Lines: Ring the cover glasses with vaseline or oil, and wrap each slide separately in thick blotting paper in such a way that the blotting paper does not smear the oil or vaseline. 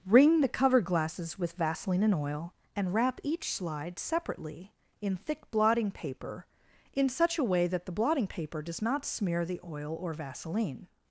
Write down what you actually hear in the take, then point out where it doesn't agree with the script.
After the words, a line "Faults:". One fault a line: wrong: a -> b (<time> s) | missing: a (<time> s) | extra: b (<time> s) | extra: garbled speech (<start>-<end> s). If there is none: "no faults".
Ring the cover glasses with vaseline and oil, and wrap each slide separately in thick blotting paper in such a way that the blotting paper does not smear the oil or vaseline.
Faults:
wrong: or -> and (2.0 s)